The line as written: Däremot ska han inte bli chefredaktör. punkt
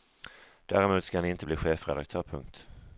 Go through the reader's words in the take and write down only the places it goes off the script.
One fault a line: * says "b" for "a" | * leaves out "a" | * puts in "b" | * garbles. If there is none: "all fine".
all fine